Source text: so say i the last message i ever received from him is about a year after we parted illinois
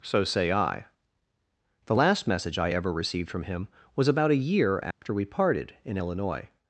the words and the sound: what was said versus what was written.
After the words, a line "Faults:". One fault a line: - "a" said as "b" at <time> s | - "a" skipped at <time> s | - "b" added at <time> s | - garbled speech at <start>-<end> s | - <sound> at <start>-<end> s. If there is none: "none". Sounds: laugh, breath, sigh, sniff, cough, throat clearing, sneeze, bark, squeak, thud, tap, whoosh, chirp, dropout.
so say i the last message i ever received from him was about a year after we parted in illinois
Faults:
- "is" said as "was" at 3.9 s
- dropout at 4.9-5.0 s
- "in" added at 5.8 s